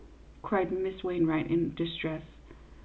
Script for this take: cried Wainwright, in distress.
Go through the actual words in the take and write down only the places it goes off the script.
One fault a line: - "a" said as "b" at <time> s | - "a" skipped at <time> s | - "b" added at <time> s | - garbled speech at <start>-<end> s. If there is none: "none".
- "Miss" added at 0.7 s